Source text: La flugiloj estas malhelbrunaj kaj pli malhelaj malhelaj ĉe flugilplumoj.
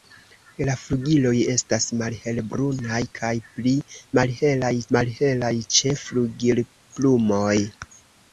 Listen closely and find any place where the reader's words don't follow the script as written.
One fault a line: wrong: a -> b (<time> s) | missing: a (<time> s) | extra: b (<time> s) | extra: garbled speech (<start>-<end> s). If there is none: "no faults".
no faults